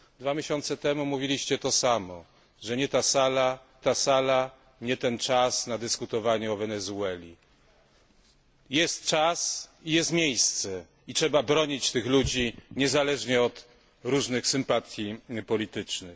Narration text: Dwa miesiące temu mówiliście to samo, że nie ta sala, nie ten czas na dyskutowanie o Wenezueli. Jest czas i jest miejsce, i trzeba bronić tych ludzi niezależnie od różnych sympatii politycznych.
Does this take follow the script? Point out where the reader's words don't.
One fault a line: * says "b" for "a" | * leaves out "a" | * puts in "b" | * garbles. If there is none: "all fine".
* puts in "ta sala"